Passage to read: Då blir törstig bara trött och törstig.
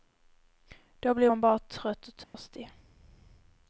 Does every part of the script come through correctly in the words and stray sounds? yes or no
no